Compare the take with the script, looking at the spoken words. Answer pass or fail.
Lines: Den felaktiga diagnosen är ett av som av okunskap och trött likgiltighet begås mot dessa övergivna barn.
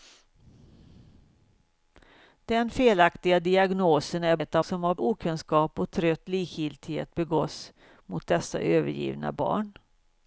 pass